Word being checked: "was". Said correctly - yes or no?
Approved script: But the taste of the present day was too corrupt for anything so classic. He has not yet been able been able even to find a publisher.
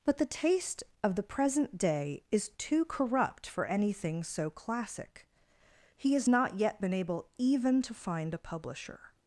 no